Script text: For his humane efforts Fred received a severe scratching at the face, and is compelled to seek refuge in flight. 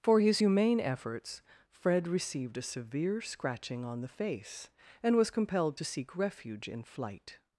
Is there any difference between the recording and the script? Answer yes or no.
yes